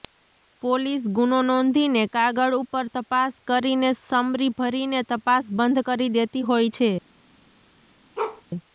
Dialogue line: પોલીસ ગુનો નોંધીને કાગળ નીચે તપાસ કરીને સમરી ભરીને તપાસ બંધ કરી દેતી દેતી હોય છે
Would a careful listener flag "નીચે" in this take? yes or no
yes